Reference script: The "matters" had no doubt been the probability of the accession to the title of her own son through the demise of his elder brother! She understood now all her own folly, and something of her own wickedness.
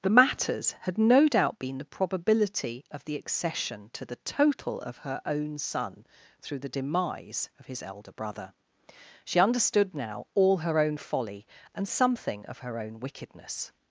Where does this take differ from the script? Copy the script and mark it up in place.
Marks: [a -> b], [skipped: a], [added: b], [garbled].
The "matters" had no doubt been the probability of the accession to the [title -> total] of her own son through the demise of his elder brother! She understood now all her own folly, and something of her own wickedness.